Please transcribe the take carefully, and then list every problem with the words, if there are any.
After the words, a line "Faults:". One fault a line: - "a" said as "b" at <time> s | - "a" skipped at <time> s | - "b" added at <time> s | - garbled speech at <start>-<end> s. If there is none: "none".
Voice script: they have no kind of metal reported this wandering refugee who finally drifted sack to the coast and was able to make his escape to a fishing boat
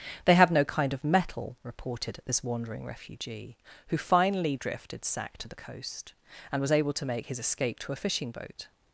they have no kind of metal reported this wandering refugee who finally drifted sack to the coast and was able to make his escape to a fishing boat
Faults:
none